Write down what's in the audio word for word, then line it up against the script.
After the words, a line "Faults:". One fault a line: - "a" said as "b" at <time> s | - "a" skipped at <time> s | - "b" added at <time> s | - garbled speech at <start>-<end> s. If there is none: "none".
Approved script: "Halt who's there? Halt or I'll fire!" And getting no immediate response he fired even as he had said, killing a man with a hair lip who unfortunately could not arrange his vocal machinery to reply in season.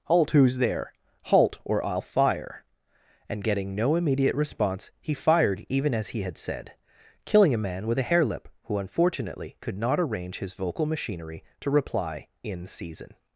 "Halt who's there? Halt or I'll fire!" And getting no immediate response he fired even as he had said, killing a man with a hair lip who unfortunately could not arrange his vocal machinery to reply in season.
Faults:
none